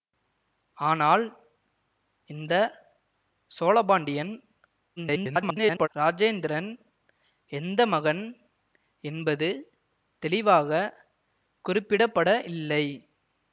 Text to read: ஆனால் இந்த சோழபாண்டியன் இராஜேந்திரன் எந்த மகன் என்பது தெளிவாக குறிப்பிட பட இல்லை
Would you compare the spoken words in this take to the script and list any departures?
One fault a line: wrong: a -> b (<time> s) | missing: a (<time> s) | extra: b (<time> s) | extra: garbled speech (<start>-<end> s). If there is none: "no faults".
extra: garbled speech (5.0-5.9 s)